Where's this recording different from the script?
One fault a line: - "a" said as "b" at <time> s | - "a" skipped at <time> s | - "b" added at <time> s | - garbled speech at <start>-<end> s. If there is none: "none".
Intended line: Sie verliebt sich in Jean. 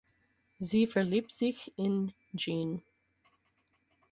none